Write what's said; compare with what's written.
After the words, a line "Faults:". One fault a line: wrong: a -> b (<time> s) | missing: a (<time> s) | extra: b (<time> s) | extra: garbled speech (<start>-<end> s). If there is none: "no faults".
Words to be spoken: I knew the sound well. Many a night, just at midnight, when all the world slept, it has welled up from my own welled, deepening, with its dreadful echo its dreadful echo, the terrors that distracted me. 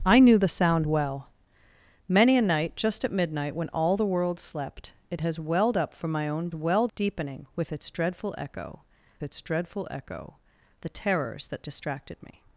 I knew the sound well. Many a night, just at midnight, when all the world slept, it has welled up from my own welled, deepening, with its dreadful echo its dreadful echo, the terrors that distracted me.
Faults:
no faults